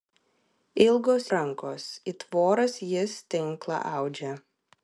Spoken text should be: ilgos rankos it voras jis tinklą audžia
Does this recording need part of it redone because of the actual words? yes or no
no